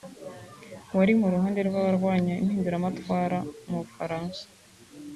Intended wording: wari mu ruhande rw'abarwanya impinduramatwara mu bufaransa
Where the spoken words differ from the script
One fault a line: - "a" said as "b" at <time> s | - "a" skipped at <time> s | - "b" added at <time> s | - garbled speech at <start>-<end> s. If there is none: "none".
none